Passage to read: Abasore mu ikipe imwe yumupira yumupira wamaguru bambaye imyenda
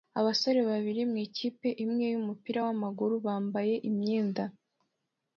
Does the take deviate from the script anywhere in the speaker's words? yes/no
yes